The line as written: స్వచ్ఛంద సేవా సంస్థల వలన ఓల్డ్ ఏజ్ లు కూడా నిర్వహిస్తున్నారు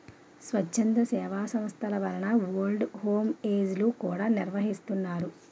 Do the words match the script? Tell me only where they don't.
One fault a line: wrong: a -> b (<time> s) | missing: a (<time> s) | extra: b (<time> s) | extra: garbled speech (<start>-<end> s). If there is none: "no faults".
extra: హోమ్ (3.0 s)